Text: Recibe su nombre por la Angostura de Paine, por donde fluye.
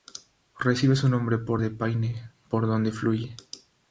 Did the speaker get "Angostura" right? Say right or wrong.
wrong